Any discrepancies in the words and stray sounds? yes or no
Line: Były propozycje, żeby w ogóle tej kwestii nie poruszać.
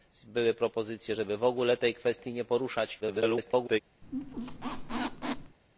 yes